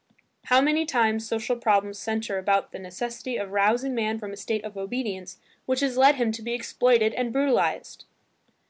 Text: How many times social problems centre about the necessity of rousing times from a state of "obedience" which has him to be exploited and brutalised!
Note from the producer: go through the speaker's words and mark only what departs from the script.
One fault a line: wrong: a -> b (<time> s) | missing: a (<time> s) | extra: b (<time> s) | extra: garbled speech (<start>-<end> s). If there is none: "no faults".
wrong: times -> man (3.9 s)
extra: led (6.0 s)